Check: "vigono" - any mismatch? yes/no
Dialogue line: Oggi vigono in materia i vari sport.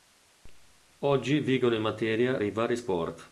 no